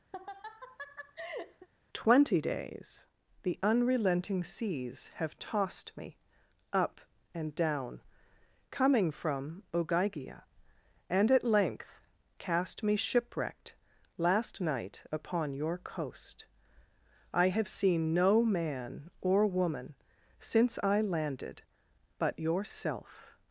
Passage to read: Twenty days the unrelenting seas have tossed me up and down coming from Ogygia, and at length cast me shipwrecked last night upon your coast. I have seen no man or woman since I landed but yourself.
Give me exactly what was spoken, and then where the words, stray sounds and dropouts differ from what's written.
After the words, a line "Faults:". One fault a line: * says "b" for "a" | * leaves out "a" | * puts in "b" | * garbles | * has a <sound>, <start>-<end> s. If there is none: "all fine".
Twenty days the unrelenting seas have tossed me up and down coming from Ogygia, and at length cast me shipwrecked last night upon your coast. I have seen no man or woman since I landed but yourself.
Faults:
* has a laugh, 0.1-1.7 s